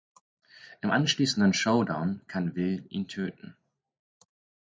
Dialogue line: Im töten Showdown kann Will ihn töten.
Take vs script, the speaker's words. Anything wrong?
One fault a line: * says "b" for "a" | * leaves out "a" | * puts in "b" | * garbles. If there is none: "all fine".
* says "anschließenden" for "töten"